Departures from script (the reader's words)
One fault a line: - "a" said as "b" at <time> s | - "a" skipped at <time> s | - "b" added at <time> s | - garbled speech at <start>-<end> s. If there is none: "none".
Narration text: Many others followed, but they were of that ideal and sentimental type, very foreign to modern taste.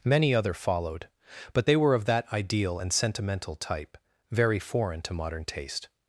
- "others" said as "other" at 0.3 s